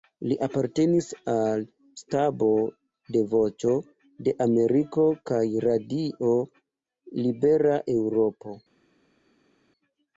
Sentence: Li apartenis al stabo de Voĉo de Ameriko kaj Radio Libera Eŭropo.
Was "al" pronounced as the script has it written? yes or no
yes